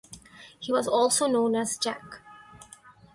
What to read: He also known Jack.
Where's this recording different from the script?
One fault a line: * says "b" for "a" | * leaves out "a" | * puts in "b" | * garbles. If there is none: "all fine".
* puts in "was"
* puts in "as"